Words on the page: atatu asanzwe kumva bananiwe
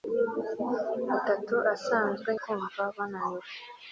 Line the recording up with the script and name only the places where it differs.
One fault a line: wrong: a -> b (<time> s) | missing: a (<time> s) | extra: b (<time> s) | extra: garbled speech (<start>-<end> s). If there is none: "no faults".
no faults